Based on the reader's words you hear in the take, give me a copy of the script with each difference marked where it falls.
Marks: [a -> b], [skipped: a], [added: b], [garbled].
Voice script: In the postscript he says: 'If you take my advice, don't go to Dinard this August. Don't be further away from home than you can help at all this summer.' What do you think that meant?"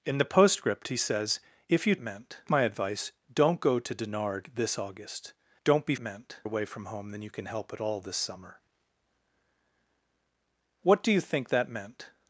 In the postscript he says: 'If you [take -> meant] my advice, don't go to Dinard this August. Don't be [further -> meant] away from home than you can help at all this summer.' What do you think that meant?"